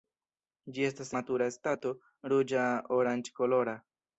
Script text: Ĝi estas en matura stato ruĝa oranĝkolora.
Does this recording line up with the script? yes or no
no